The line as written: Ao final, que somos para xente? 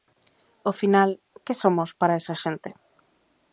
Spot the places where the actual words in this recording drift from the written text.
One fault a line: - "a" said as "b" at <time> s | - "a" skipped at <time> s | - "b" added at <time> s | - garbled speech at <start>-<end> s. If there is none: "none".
- "esa" added at 2.2 s